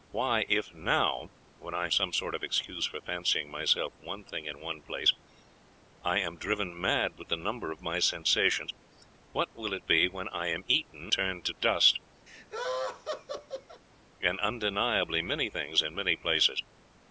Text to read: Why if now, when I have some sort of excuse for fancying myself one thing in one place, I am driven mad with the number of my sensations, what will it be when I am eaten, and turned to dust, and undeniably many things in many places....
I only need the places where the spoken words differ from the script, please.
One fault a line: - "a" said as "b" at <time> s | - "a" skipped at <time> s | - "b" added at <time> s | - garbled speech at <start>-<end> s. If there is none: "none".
- "have" skipped at 1.9 s
- "and" skipped at 11.1 s